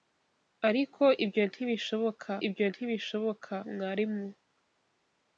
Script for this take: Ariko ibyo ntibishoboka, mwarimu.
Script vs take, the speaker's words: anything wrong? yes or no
yes